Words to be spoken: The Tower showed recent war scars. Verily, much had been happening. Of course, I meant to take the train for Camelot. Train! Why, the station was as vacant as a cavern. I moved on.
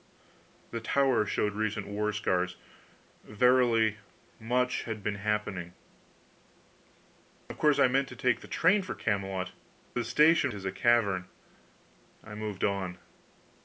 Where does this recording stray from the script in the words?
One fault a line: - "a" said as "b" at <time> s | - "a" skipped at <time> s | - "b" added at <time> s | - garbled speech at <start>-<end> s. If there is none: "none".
- "Train Why" skipped at 9.5 s
- "was as vacant" skipped at 10.5 s